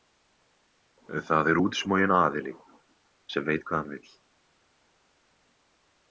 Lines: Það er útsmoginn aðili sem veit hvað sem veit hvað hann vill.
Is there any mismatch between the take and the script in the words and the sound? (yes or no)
yes